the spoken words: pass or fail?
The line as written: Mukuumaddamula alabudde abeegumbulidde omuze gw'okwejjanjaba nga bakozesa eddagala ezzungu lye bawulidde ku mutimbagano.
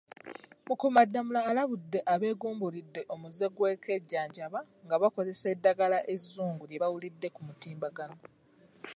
pass